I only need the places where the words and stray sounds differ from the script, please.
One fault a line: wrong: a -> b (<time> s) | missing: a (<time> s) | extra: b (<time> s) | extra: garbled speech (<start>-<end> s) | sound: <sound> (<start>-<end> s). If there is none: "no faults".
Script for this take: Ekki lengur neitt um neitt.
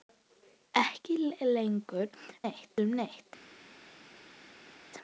no faults